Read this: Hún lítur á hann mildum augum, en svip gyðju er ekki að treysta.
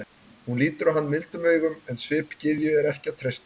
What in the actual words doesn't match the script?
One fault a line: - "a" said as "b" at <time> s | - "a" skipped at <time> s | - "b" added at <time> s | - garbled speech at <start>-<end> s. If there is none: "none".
none